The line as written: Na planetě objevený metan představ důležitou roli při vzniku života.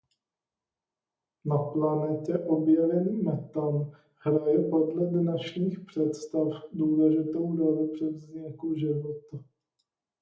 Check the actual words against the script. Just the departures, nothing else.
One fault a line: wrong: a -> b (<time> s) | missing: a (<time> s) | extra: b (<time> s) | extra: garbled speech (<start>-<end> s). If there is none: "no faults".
extra: hraje podle dnešních (4.2 s)